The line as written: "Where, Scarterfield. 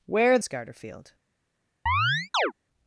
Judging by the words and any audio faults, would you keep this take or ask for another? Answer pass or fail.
fail